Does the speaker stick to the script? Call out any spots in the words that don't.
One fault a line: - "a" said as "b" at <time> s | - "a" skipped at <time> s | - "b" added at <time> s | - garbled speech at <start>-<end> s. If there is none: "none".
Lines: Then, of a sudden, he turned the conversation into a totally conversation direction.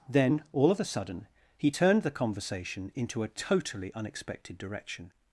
- "all" added at 0.5 s
- "conversation" said as "unexpected" at 3.9 s